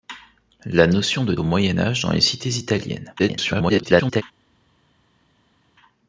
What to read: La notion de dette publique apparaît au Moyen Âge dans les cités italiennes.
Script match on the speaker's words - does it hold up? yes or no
no